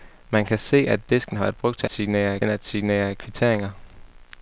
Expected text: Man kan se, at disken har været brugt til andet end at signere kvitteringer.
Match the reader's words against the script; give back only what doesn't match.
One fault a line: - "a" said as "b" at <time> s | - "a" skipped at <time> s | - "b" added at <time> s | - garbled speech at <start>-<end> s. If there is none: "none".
- "andet" said as "signere" at 1.9 s